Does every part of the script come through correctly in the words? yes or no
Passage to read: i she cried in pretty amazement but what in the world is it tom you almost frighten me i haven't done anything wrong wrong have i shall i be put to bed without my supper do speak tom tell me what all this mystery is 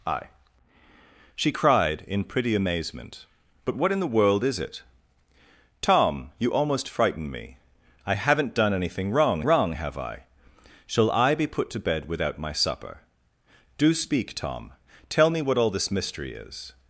yes